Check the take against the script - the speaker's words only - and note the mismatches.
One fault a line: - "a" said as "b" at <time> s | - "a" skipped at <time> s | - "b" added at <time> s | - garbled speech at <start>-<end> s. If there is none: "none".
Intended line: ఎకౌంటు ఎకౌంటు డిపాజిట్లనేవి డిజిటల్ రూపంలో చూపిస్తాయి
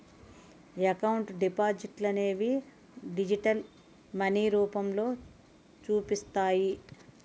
- "ఎకౌంటు" skipped at 1.3 s
- "మనీ" added at 4.1 s